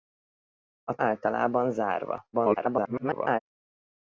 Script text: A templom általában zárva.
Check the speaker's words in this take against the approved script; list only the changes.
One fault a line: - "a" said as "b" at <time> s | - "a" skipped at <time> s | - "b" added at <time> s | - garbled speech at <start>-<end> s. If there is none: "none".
- "templom" skipped at 1.0 s
- garbled speech at 2.3-3.4 s